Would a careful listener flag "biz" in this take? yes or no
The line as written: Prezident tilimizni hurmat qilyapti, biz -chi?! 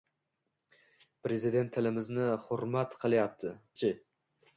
yes